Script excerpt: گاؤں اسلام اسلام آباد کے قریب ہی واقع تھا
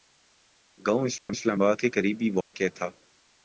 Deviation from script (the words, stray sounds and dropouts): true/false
true